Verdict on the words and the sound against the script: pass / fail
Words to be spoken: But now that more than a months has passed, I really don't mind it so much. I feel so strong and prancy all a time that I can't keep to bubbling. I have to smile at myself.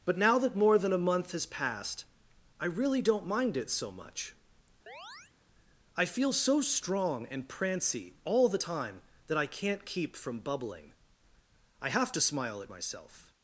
fail